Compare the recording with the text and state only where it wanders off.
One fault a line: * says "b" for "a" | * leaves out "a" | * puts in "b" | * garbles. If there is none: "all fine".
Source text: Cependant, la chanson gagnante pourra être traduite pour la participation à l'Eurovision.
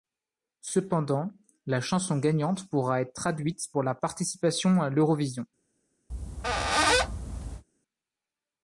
all fine